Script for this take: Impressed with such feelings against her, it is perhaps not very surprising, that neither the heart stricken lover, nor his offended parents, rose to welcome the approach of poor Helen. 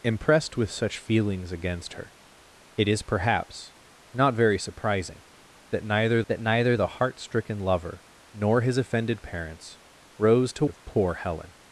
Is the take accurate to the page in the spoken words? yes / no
no